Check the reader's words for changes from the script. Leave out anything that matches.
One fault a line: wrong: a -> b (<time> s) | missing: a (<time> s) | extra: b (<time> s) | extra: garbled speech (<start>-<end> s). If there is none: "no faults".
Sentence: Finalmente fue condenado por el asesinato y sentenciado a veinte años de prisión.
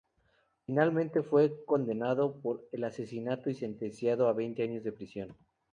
no faults